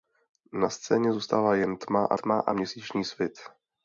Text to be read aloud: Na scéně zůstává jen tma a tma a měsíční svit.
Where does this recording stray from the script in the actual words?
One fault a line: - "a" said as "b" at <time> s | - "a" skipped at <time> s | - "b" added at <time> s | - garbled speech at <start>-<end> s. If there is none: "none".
none